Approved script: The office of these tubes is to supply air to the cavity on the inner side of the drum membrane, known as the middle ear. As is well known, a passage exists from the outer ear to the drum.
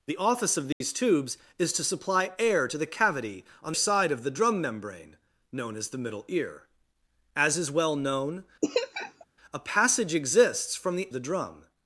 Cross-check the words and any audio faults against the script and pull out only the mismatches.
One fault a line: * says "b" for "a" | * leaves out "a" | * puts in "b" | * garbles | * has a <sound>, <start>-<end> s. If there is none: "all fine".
* has a dropout, 0.7-0.8 s
* leaves out "the inner"
* has a laugh, 8.6-9.2 s
* leaves out "outer ear to"